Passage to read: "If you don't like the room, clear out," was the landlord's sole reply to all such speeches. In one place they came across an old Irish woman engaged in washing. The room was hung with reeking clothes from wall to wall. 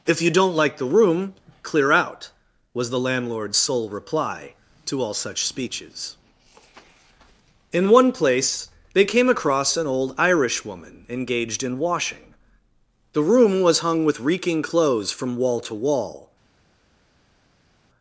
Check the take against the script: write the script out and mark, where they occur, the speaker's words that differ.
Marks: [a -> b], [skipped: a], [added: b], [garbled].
"If you don't like the room, clear out," was the landlord's sole reply to all such speeches. In one place they came across an old Irish woman engaged in washing. The room was hung with reeking clothes from wall to wall.